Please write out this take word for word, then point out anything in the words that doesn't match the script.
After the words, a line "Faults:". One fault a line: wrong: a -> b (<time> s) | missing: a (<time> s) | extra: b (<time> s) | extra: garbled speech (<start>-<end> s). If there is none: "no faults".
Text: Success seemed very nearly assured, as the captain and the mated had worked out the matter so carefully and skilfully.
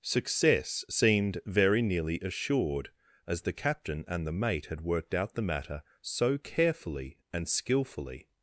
Success seemed very nearly assured, as the captain and the mate had worked out the matter so carefully and skilfully.
Faults:
wrong: mated -> mate (4.3 s)